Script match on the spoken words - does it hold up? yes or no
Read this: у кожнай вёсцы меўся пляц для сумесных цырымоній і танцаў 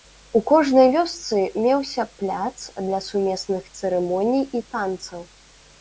yes